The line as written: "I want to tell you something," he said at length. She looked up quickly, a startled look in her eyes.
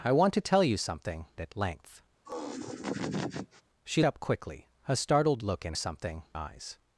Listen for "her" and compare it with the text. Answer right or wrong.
wrong